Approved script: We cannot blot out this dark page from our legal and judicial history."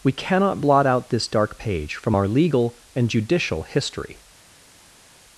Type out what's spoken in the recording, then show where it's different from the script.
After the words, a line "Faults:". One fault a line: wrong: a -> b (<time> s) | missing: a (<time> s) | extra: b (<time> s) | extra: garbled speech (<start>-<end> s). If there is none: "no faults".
We cannot blot out this dark page from our legal and judicial history."
Faults:
no faults